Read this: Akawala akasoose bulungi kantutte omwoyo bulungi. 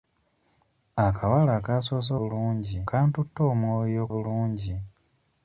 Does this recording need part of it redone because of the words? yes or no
no